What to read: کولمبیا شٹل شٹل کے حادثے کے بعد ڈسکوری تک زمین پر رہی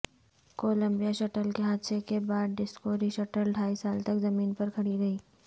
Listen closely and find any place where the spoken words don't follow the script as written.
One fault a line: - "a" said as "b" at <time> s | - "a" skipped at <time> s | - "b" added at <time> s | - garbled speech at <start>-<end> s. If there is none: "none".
- "شٹل" skipped at 1.5 s
- "شٹل ڈھائی سال" added at 3.1 s
- "کھڑی" added at 4.7 s